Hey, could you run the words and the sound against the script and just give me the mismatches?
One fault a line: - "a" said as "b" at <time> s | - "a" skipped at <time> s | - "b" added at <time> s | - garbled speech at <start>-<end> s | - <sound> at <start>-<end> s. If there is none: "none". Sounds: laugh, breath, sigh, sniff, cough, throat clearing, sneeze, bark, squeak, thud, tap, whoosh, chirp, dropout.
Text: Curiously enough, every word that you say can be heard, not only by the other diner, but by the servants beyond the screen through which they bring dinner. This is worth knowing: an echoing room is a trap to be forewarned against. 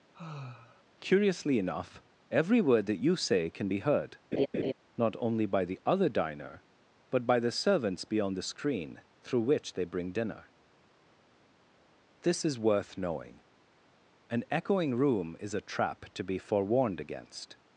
- sigh at 0.1-0.8 s
- laugh at 4.3-4.7 s